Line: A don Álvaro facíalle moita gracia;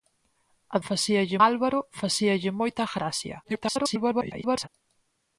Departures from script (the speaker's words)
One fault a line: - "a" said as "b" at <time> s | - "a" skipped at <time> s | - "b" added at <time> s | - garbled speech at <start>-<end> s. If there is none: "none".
- "don" said as "facíalle" at 0.9 s
- garbled speech at 3.4-4.7 s